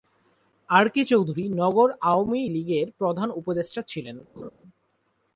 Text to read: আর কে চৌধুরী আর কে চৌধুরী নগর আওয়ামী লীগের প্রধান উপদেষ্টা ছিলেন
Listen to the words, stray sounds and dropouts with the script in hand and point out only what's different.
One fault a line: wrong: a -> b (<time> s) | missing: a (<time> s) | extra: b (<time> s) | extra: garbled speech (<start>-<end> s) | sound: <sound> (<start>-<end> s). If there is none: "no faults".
missing: আর কে চৌধুরী (1.4 s)
sound: laugh (4.4-4.5 s)